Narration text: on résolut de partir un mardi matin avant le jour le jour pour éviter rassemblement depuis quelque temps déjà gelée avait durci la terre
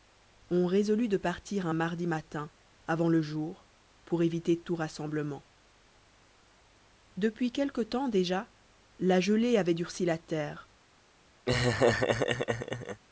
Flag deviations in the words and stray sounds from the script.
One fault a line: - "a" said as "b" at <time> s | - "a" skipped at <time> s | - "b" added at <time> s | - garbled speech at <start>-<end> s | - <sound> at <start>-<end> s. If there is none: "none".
- "le jour" skipped at 3.7 s
- "tout" added at 4.6 s
- "la" added at 9.0 s
- laugh at 11.5-13.0 s